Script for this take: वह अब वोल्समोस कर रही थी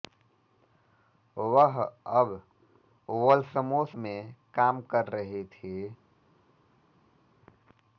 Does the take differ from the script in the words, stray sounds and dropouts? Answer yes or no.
yes